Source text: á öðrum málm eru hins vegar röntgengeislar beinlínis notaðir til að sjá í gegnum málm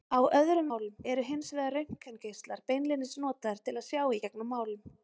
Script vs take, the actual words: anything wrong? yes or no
no